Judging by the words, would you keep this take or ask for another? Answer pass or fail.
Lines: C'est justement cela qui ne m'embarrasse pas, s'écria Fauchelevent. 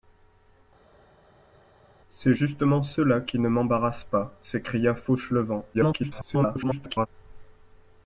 fail